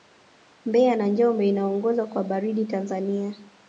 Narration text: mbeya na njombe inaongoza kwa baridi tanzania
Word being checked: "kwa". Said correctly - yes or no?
yes